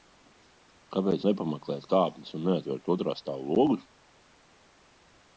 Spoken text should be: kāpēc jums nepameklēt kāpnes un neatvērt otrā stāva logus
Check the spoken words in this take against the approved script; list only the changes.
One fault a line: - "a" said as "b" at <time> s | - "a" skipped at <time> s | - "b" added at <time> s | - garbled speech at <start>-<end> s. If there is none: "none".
- "jums" skipped at 1.2 s